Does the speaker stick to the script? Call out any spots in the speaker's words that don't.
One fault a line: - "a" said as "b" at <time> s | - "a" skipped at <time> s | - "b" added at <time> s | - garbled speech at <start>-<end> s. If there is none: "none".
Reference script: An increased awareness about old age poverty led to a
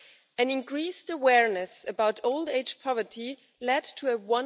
none